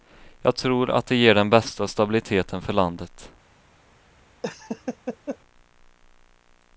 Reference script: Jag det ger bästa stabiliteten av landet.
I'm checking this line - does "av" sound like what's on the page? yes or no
no